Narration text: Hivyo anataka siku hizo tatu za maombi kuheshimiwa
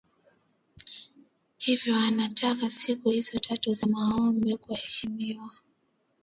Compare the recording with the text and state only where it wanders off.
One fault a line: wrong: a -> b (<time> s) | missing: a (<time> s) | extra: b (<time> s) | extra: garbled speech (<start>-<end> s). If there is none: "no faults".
no faults